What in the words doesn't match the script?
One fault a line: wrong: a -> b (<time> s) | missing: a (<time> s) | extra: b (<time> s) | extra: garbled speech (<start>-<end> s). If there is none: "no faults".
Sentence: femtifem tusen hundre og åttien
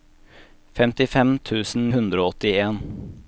no faults